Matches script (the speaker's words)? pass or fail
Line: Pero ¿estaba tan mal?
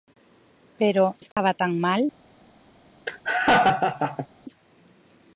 pass